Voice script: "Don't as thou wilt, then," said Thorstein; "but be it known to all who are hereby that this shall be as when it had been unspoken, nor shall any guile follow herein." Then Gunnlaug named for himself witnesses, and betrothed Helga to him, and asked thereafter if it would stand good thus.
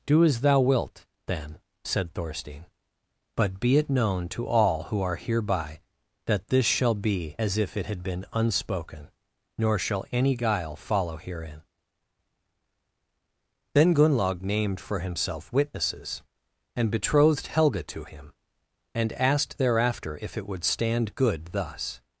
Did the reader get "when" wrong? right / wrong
wrong